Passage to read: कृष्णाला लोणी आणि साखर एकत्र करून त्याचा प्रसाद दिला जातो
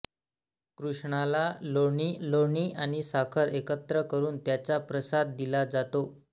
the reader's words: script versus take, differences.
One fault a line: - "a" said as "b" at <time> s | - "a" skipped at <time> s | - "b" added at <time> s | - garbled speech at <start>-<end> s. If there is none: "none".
- "लोणी" added at 2.2 s